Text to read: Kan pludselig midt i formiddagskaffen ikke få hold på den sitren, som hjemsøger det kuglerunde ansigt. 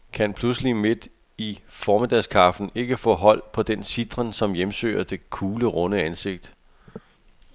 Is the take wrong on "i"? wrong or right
right